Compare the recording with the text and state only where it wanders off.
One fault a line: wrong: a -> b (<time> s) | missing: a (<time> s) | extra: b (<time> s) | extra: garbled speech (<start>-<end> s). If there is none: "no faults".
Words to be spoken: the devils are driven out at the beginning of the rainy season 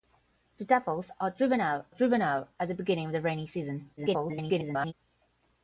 extra: driven out (1.9 s)
extra: garbled speech (4.0-4.9 s)